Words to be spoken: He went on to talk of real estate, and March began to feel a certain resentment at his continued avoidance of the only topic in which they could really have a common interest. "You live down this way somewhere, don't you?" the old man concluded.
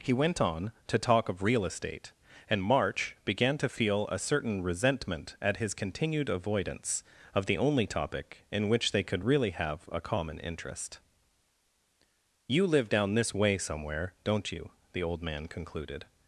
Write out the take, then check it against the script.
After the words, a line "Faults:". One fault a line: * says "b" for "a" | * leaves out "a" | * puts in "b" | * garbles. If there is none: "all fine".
He went on to talk of real estate, and March began to feel a certain resentment at his continued avoidance of the only topic in which they could really have a common interest. "You live down this way somewhere, don't you?" the old man concluded.
Faults:
all fine